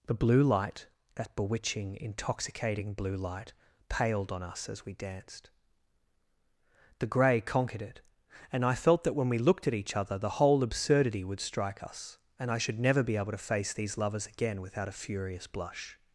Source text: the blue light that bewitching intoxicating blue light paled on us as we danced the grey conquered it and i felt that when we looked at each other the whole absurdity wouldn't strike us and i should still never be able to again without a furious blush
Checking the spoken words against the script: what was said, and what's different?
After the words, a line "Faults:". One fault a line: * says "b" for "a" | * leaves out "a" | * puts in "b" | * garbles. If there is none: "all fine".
the blue light that bewitching intoxicating blue light paled on us as we danced the grey conquered it and i felt that when we looked at each other the whole absurdity would strike us and i should never be able to face these lovers again without a furious blush
Faults:
* says "would" for "wouldn't"
* leaves out "still"
* puts in "face these lovers"